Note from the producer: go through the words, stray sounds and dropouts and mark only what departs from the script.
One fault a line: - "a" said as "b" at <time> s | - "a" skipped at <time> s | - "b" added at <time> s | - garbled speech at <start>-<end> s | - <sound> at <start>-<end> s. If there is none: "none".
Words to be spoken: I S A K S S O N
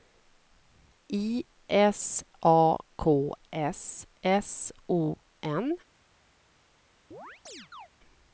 - chirp at 7.1-7.9 s